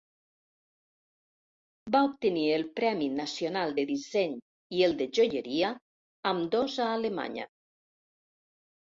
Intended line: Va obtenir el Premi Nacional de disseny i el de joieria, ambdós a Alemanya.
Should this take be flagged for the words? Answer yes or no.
no